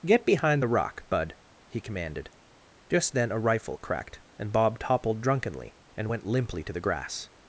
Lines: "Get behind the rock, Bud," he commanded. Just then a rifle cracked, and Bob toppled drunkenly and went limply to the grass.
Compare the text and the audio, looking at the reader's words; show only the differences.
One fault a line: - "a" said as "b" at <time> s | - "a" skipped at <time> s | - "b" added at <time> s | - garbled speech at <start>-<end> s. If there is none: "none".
none